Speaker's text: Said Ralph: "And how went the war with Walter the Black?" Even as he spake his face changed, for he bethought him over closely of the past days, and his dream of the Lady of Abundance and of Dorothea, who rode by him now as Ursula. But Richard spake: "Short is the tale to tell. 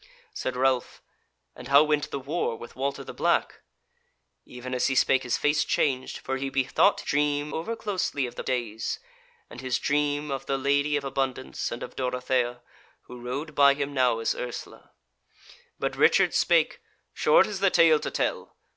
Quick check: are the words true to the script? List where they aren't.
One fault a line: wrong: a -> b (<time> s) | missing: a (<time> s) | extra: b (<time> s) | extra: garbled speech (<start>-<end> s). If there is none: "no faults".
wrong: him -> dream (7.0 s)
missing: past (8.4 s)